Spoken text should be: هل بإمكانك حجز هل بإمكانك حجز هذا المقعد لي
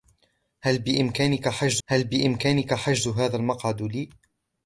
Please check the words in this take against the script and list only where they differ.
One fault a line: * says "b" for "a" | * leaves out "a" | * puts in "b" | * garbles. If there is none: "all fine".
all fine